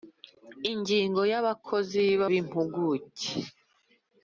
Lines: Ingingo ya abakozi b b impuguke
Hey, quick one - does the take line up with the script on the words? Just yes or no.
yes